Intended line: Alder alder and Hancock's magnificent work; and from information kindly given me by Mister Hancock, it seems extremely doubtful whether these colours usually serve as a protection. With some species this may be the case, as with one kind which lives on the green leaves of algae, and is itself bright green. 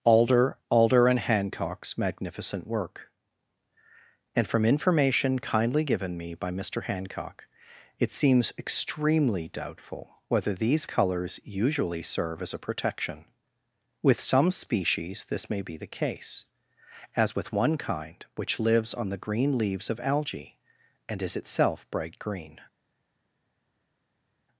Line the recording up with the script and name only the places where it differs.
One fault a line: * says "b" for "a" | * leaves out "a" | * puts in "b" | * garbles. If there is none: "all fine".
all fine